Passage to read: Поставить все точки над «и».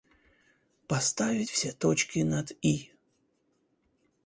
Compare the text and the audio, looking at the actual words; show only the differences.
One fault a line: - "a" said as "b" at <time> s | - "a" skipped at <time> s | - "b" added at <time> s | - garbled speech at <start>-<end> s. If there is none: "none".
none